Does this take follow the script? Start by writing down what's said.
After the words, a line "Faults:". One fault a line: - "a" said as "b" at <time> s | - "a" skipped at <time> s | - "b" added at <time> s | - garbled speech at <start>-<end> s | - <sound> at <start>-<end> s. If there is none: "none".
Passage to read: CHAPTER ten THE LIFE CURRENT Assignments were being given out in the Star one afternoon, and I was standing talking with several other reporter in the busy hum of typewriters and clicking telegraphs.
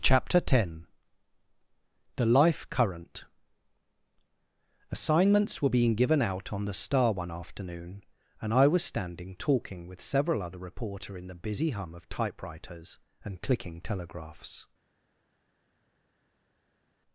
CHAPTER ten THE LIFE CURRENT Assignments were being given out on the Star one afternoon, and I was standing talking with several other reporter in the busy hum of typewriters and clicking telegraphs.
Faults:
- "in" said as "on" at 6.5 s